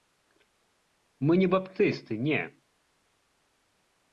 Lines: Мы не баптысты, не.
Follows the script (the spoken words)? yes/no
yes